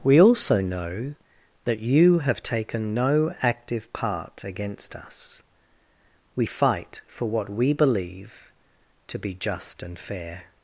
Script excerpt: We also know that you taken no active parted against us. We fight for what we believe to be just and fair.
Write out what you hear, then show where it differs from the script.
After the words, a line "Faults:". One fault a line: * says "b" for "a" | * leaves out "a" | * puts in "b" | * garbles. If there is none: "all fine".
We also know that you have taken no active part against us. We fight for what we believe to be just and fair.
Faults:
* puts in "have"
* says "part" for "parted"